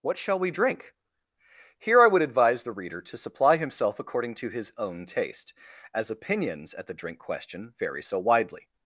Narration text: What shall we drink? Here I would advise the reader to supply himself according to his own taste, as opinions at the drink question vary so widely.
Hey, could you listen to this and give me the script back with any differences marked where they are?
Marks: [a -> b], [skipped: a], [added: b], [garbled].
What shall we drink? Here I would advise the reader to supply himself according to his own taste, as opinions at the drink question vary so widely.